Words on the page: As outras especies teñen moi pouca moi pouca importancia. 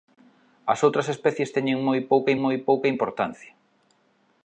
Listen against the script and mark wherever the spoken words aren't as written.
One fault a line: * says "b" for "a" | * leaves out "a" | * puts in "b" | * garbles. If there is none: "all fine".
all fine